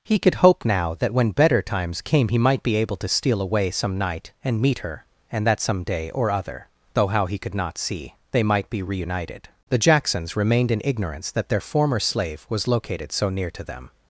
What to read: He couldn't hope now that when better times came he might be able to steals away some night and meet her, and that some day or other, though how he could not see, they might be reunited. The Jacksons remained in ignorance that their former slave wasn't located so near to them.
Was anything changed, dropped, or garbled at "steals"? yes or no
yes